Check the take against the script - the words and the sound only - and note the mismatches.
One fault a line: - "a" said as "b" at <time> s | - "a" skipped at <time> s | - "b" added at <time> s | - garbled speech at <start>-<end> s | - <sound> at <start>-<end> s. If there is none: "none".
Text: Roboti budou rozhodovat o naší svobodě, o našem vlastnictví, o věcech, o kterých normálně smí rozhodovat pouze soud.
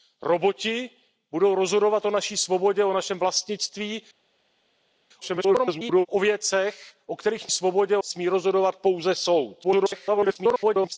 - garbled speech at 5.2-6.1 s
- "normálně" said as "svobodě" at 7.5 s
- garbled speech at 9.6-11.0 s